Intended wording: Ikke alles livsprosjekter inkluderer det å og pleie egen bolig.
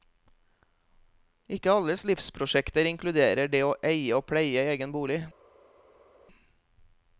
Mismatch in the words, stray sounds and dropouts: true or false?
true